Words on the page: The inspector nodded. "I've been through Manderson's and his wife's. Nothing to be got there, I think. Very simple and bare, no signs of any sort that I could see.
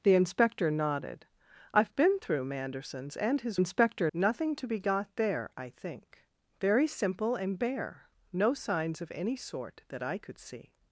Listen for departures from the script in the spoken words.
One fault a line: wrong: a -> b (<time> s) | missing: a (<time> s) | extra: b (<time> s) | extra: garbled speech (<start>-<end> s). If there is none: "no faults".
wrong: wife's -> inspector (3.5 s)